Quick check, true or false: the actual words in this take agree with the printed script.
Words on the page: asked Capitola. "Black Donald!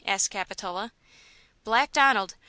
true